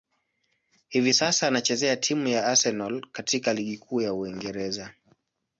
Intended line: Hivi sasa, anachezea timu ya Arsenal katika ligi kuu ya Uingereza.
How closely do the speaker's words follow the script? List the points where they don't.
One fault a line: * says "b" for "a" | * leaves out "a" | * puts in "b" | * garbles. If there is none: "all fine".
all fine